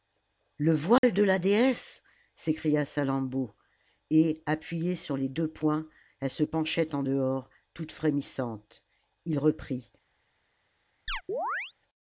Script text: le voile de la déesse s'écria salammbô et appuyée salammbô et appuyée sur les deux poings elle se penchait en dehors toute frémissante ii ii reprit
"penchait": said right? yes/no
yes